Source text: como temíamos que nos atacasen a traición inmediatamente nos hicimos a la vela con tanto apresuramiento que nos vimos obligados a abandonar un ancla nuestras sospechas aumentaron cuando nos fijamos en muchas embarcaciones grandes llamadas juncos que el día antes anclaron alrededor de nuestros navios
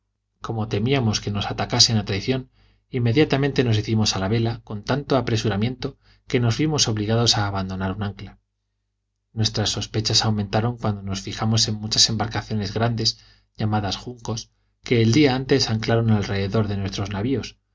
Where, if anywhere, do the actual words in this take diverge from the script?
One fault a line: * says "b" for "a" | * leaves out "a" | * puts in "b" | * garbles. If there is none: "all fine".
all fine